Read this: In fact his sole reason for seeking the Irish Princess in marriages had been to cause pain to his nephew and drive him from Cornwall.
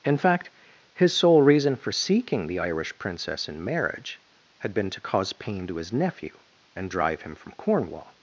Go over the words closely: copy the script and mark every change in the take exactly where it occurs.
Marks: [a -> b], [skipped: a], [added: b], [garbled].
In fact his sole reason for seeking the Irish Princess in [marriages -> marriage] had been to cause pain to his nephew and drive him from Cornwall.